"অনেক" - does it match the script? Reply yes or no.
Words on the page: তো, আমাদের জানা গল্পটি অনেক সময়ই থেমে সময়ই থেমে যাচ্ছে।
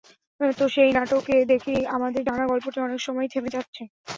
yes